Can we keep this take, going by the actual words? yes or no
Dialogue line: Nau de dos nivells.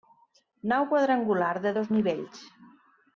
no